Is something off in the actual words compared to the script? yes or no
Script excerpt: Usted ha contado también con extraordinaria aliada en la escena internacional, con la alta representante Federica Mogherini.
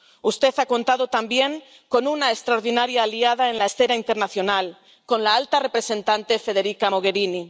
yes